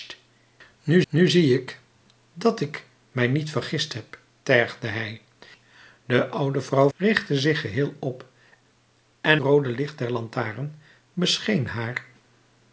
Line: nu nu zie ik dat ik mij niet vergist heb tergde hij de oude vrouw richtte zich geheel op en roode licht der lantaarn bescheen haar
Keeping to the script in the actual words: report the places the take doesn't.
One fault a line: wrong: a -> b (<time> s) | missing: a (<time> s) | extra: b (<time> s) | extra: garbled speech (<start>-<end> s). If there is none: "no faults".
no faults